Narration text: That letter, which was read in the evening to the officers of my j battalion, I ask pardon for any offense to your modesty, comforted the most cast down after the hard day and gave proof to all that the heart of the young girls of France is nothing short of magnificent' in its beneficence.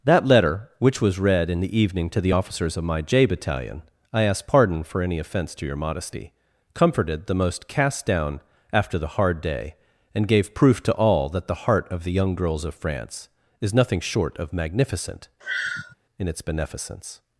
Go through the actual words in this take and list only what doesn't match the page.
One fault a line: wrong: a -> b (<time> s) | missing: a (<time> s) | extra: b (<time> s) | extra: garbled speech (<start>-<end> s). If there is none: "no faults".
no faults